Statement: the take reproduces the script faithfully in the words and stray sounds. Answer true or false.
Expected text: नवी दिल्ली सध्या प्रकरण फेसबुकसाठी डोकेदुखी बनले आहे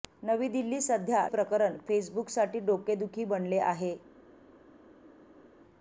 true